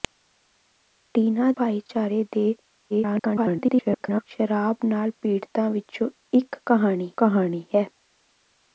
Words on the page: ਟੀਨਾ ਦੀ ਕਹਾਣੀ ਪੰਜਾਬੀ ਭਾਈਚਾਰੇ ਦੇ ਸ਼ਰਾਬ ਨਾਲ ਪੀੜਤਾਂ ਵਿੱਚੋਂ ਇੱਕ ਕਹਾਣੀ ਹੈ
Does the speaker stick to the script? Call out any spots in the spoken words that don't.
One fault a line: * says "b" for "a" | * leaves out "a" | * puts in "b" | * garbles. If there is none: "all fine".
* leaves out "ਦੀ ਕਹਾਣੀ ਪੰਜਾਬੀ"
* garbles
* puts in "ਕਹਾਣੀ"